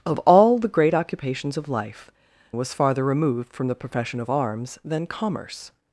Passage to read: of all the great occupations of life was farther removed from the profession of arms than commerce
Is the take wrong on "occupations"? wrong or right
right